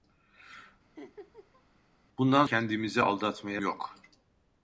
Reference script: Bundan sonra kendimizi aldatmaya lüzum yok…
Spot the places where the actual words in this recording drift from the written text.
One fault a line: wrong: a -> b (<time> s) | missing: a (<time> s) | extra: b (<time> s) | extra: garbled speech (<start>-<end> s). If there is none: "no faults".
missing: sonra (2.5 s)
missing: lüzum (3.6 s)